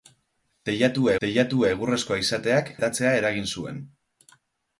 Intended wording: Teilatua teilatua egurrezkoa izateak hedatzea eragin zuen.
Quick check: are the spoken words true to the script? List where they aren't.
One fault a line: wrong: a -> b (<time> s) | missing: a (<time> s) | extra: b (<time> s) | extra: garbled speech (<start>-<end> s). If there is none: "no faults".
no faults